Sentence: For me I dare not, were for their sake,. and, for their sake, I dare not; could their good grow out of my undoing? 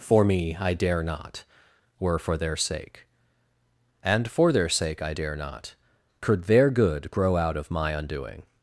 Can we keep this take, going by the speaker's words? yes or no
yes